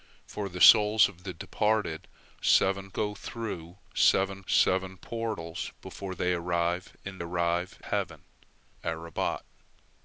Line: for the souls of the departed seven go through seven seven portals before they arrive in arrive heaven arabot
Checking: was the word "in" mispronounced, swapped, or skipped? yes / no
no